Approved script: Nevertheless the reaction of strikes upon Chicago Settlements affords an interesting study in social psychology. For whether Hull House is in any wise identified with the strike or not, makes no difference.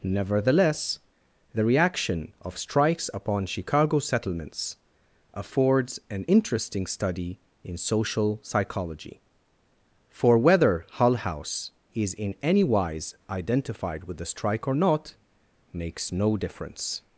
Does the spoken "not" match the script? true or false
true